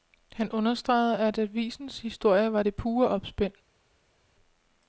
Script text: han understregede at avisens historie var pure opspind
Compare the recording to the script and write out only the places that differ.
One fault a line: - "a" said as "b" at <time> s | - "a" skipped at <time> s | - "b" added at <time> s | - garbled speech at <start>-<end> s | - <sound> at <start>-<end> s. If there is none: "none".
- "det" added at 2.6 s